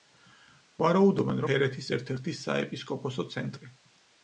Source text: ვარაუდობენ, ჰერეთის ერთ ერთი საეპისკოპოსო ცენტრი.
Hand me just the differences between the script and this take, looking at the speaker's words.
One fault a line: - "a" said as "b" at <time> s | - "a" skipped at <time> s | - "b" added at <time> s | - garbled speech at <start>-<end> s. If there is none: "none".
none